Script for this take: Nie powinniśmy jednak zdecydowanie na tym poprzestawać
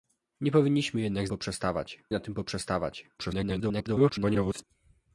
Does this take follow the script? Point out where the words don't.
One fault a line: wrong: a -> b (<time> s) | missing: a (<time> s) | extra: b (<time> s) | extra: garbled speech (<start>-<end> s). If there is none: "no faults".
wrong: zdecydowanie -> poprzestawać (1.3 s)
extra: garbled speech (3.2-4.6 s)